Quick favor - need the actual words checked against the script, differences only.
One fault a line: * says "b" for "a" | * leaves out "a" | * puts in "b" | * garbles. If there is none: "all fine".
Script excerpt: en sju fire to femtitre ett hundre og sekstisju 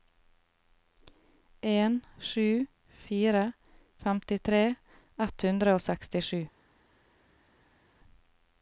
* leaves out "to"